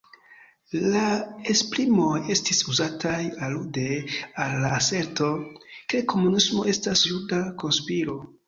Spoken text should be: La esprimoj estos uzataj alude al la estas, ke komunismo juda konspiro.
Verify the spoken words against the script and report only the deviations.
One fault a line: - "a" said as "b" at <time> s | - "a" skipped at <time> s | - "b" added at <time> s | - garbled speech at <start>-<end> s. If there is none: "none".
- "estos" said as "estis" at 2.4 s
- "estas" said as "aserto" at 4.8 s
- "estas" added at 6.8 s